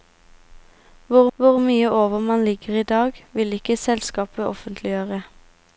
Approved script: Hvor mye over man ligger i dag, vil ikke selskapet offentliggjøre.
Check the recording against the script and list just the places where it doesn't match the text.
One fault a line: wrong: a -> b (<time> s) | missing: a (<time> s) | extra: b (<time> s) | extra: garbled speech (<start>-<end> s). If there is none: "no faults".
extra: hvor (1.4 s)